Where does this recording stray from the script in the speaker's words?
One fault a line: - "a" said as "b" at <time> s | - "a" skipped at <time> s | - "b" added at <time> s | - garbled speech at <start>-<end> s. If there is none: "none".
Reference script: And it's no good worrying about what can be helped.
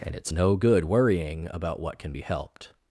none